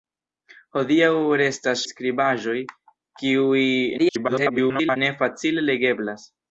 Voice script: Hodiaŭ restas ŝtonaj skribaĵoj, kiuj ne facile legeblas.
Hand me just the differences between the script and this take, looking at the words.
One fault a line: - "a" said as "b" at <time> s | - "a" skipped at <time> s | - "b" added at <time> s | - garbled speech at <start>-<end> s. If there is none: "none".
- "ŝtonaj" skipped at 1.8 s
- garbled speech at 4.0-5.0 s